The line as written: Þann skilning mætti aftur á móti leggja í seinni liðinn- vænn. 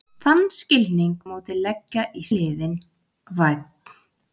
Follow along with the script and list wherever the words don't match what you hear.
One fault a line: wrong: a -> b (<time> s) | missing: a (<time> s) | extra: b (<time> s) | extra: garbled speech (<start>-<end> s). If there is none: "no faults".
missing: mætti aftur (1.1 s)
missing: seinni (2.3 s)